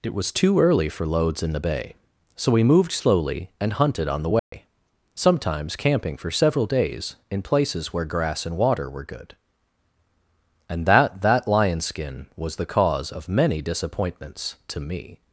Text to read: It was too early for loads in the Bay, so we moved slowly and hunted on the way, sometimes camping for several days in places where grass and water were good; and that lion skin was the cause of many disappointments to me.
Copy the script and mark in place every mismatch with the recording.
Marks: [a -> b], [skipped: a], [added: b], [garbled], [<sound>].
It was too early for loads in the Bay, so we moved slowly and hunted on the way, [dropout] sometimes camping for several days in places where grass and water were good; and that [added: that] lion skin was the cause of many disappointments to me.